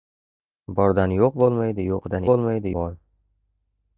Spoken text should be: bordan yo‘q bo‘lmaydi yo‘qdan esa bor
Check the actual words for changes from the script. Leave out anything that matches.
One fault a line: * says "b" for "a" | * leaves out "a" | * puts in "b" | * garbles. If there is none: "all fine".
* says "bo‘lmaydi" for "esa"